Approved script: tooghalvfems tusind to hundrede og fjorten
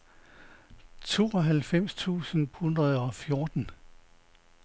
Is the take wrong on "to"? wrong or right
wrong